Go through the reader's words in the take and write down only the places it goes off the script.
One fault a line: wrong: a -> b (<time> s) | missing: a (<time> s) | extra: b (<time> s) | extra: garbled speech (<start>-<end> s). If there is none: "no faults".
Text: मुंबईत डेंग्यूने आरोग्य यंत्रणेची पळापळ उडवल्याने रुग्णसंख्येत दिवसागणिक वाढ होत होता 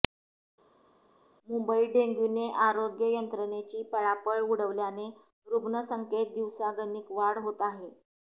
wrong: होता -> आहे (7.6 s)